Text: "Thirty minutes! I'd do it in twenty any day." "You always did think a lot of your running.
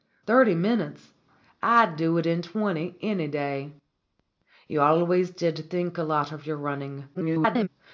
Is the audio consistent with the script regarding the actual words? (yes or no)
no